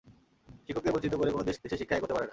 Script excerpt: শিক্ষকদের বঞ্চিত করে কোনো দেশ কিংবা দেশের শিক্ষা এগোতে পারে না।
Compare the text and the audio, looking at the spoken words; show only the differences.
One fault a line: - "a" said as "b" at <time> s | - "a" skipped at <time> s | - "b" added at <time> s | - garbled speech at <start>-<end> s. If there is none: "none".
- "কিংবা" skipped at 1.6 s